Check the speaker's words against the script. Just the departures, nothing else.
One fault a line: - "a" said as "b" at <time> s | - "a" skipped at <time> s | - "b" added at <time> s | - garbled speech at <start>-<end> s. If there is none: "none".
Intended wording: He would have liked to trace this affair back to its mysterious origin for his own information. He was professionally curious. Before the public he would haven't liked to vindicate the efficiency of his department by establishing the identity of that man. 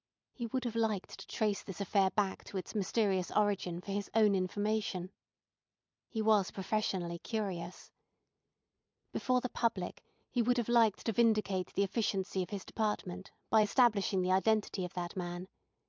- "haven't" said as "have" at 10.6 s